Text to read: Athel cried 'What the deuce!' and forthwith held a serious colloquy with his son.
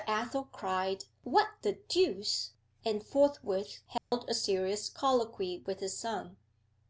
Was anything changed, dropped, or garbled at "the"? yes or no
no